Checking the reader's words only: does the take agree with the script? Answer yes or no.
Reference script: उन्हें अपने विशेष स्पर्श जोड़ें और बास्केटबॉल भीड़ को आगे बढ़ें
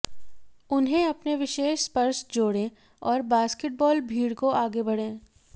yes